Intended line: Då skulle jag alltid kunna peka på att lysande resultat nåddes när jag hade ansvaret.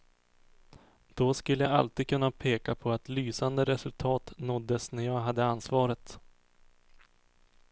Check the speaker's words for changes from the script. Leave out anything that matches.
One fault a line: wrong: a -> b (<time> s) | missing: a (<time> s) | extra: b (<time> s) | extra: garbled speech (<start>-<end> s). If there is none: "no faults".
no faults